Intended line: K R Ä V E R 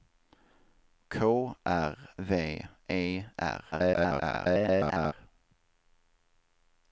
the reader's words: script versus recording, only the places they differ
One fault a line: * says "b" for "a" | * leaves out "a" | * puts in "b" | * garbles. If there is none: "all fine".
* leaves out "Ä"
* garbles